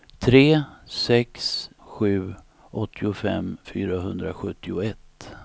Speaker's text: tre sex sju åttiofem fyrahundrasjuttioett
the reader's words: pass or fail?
pass